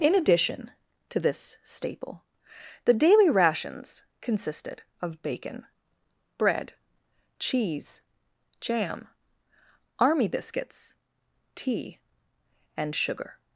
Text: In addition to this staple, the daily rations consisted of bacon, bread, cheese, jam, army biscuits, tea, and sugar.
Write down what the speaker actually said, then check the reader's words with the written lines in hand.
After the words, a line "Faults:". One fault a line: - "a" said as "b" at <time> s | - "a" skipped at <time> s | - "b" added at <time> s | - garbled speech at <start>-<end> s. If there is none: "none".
In addition to this staple, the daily rations consisted of bacon, bread, cheese, jam, army biscuits, tea, and sugar.
Faults:
none